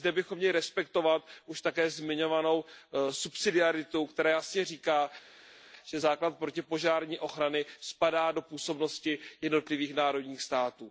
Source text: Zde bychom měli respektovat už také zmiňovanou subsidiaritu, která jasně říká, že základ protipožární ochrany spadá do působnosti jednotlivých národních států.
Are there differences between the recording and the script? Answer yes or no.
no